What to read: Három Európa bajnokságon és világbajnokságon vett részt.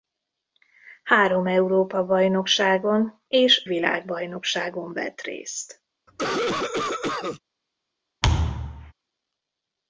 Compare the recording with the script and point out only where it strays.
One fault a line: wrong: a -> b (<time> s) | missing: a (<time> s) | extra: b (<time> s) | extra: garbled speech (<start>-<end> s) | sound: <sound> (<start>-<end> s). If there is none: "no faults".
sound: cough (6.1-7.4 s)
sound: thud (8.2-8.9 s)